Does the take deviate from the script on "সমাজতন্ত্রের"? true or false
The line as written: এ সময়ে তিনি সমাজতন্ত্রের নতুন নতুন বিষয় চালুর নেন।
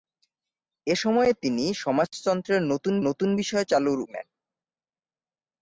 false